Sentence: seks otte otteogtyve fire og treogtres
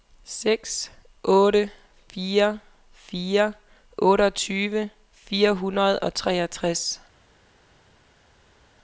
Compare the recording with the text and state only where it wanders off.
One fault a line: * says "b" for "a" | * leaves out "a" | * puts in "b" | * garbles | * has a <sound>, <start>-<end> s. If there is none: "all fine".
* puts in "fire fire"
* puts in "hundrede"